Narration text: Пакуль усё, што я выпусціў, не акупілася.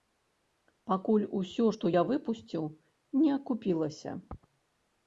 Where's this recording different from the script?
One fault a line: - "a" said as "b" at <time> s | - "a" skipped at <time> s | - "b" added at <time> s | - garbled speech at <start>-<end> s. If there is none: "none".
none